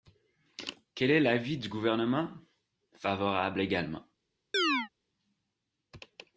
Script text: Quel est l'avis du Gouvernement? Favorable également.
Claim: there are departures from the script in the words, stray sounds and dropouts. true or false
true